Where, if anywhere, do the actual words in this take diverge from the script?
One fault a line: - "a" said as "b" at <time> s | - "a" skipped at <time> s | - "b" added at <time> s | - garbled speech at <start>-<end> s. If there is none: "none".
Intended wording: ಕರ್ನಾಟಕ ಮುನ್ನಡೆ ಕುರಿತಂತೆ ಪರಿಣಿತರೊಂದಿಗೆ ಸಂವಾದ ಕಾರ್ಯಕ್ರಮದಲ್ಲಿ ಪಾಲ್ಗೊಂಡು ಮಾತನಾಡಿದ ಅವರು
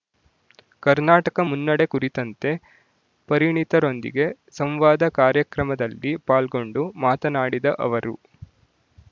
none